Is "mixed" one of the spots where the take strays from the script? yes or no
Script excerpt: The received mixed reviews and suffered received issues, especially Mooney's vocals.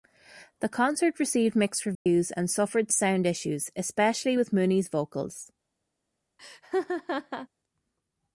no